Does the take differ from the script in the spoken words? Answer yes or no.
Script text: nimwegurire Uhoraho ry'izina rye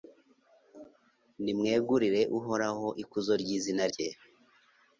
yes